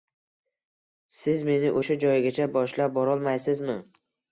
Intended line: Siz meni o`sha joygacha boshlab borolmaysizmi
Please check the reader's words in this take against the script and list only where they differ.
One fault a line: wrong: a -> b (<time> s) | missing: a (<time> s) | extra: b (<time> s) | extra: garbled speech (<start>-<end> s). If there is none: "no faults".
no faults